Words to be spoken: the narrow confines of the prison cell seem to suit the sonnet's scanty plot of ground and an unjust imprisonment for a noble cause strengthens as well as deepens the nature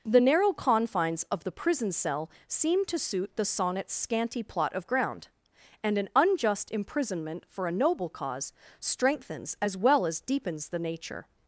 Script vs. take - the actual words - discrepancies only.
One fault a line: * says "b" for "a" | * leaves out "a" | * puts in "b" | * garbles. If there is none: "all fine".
all fine